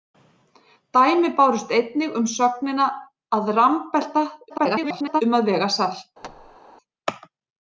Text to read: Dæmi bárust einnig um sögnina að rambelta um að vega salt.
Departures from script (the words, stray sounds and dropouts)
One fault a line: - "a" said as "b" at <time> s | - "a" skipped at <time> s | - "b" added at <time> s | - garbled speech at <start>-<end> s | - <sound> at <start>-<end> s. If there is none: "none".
- garbled speech at 4.5-5.2 s
- thud at 6.2-6.6 s